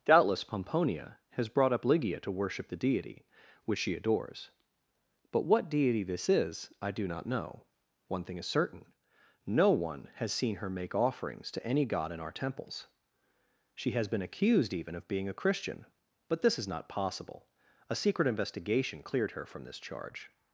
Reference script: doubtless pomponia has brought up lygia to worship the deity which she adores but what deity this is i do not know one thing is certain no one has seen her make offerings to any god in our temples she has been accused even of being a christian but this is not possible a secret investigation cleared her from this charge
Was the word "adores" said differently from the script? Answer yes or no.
no